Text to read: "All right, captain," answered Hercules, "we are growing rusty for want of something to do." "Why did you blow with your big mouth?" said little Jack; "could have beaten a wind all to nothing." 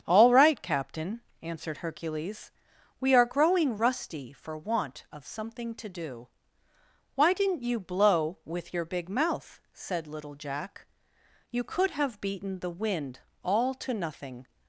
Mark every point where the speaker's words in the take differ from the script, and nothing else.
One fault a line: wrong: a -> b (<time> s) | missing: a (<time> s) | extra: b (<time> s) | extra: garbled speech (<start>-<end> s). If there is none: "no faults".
wrong: did -> didn't (7.3 s)
extra: you (11.5 s)
wrong: a -> the (12.6 s)